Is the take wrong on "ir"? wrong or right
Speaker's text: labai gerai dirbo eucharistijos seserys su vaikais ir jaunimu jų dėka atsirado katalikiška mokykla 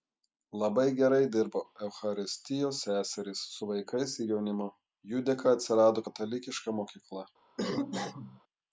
right